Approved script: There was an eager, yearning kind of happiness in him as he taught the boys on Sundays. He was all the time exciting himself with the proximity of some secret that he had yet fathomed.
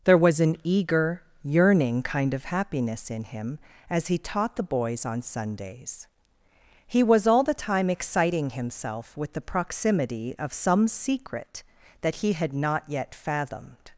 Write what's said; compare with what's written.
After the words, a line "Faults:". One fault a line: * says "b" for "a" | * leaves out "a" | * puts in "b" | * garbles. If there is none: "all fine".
There was an eager, yearning kind of happiness in him as he taught the boys on Sundays. He was all the time exciting himself with the proximity of some secret that he had not yet fathomed.
Faults:
* puts in "not"